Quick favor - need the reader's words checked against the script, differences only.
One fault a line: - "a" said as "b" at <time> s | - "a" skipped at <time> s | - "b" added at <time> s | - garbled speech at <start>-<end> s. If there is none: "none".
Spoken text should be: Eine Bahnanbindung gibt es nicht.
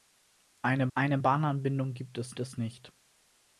- "eine" added at 1.0 s
- "es" added at 2.4 s